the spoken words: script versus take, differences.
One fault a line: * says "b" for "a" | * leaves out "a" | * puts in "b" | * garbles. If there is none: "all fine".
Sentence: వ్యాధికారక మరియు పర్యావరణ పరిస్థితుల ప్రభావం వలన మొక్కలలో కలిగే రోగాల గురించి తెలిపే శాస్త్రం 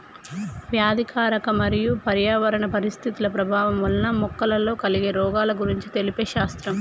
all fine